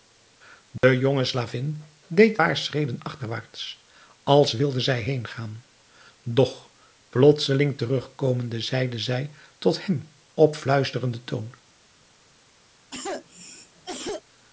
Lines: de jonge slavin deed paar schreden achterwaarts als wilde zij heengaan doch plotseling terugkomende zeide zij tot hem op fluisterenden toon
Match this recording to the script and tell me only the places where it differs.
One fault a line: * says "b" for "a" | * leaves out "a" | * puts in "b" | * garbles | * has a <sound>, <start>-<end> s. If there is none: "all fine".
* has a dropout, 0.8-0.8 s
* has a cough, 12.9-14.2 s